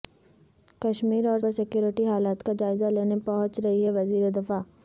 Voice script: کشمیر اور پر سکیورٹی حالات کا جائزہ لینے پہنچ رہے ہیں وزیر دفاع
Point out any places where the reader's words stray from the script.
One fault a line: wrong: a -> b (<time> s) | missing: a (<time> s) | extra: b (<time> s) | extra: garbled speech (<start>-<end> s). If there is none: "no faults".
no faults